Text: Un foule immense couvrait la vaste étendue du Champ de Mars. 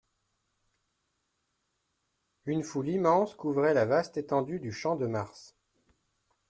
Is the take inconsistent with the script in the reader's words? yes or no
yes